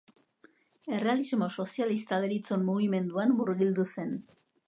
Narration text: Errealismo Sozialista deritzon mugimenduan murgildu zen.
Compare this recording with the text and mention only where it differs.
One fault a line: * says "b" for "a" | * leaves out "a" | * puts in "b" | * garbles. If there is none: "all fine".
all fine